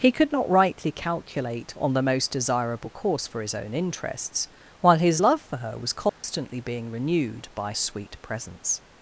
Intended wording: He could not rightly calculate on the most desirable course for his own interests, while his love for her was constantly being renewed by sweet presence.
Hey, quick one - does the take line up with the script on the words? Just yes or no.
yes